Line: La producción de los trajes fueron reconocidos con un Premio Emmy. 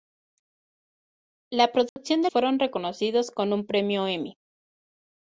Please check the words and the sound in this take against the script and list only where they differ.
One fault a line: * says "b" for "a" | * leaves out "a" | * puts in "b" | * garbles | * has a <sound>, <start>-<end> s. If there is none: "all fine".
* has a dropout, 1.9-2.0 s
* leaves out "los trajes"